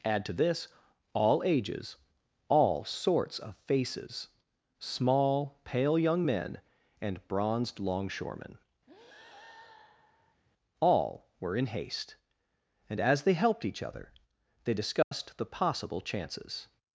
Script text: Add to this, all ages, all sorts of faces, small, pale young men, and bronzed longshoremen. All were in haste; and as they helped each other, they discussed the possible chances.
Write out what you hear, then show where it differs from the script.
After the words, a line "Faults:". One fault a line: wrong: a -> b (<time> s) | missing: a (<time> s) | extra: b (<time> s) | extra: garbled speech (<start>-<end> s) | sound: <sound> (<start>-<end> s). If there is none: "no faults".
Add to this, all ages, all sorts of faces, small, pale young men, and bronzed longshoremen. All were in haste; and as they helped each other, they discussed the possible chances.
Faults:
sound: breath (8.9-10.4 s)
sound: dropout (15.0-15.1 s)